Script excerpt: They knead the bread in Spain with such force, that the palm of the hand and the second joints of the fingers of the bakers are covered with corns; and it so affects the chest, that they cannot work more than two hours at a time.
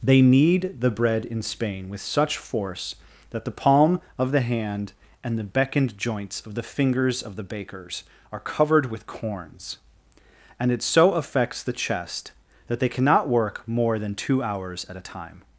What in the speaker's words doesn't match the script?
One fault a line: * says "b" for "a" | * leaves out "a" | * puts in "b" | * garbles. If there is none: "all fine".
* says "beckoned" for "second"